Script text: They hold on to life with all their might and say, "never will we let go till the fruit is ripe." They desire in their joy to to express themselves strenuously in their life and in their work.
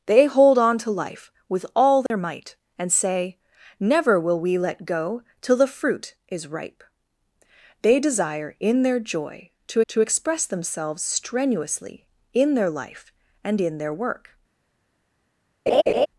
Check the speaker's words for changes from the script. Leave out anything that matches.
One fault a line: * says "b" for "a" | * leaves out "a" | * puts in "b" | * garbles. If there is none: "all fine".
all fine